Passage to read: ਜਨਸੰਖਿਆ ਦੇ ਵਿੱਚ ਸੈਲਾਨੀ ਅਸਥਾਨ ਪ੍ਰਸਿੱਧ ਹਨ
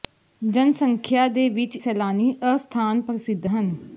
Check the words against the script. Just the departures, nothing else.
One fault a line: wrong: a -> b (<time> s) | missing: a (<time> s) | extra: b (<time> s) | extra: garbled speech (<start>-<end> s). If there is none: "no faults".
no faults